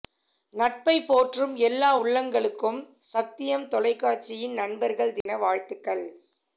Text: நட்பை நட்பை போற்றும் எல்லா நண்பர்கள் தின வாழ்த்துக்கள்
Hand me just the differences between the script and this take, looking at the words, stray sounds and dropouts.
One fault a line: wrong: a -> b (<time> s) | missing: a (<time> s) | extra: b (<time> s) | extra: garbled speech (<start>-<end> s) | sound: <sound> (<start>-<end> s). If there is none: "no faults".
missing: நட்பை (0.9 s)
extra: உள்ளங்களுக்கும் சத்தியம் தொலைக்காட்சியின் (2.0 s)
sound: dropout (5.2-5.3 s)